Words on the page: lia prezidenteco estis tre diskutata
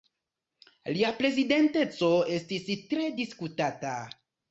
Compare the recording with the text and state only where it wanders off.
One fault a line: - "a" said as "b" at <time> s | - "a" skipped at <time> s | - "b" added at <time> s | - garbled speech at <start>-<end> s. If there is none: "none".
none